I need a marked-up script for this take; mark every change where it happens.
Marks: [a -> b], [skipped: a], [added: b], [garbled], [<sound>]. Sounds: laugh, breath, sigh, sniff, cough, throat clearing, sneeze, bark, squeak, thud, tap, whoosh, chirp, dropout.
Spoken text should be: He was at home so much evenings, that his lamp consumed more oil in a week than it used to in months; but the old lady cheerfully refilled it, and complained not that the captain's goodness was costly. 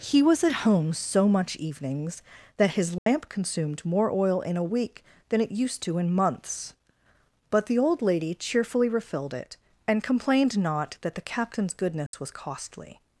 He was at home so much evenings, that his lamp [dropout] consumed more oil in a week than it used to in months; but the old lady cheerfully refilled it, and complained not that the captain's goodness [dropout] was costly.